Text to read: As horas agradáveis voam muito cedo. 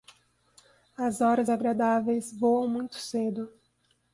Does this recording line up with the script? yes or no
yes